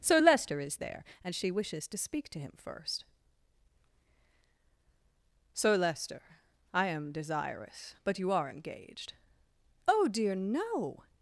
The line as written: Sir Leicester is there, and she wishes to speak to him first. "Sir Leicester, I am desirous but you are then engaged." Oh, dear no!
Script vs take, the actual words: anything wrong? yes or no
yes